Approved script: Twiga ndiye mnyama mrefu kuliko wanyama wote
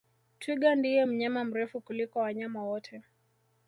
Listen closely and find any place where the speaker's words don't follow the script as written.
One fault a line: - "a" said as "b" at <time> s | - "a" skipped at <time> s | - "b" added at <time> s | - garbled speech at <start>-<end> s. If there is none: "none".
none